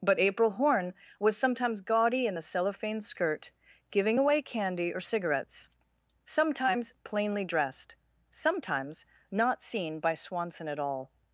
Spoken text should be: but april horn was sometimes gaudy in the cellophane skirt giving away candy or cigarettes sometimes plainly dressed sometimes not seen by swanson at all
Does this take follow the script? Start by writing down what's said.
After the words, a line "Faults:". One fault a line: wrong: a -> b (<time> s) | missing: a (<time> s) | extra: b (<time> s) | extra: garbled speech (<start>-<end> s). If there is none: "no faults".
but april horn was sometimes gaudy in the cellophane skirt giving away candy or cigarettes sometimes plainly dressed sometimes not seen by swanson at all
Faults:
no faults